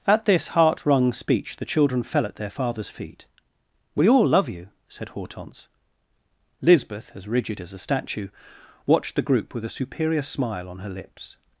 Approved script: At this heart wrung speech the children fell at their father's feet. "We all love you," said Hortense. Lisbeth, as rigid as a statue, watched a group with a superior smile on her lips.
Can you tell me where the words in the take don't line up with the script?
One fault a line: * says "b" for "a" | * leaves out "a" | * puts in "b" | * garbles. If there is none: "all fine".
* says "the" for "a"